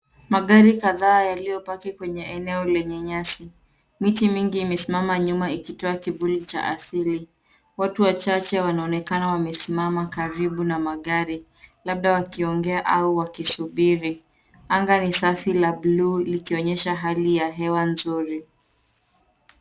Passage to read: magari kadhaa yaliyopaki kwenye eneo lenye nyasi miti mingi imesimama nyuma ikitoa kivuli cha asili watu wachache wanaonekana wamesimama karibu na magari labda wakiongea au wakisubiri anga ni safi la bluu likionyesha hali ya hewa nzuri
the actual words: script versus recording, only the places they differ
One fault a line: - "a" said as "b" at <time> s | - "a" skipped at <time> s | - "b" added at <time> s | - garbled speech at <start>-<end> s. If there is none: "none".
none